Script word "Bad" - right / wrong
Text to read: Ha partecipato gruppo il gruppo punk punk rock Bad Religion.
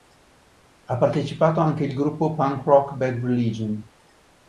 right